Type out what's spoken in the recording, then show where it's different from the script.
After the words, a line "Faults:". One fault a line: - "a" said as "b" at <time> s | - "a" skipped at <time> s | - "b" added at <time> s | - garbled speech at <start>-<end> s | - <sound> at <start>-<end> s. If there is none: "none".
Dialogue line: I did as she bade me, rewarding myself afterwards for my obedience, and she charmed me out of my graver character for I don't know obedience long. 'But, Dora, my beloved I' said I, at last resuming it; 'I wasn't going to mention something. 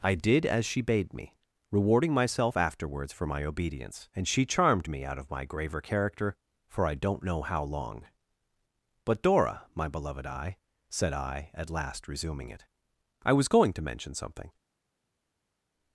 I did as she bade me, rewarding myself afterwards for my obedience, and she charmed me out of my graver character for I don't know how long. 'But, Dora, my beloved I' said I, at last resuming it; 'I was going to mention something.
Faults:
- "obedience" said as "how" at 7.4 s
- "wasn't" said as "was" at 13.3 s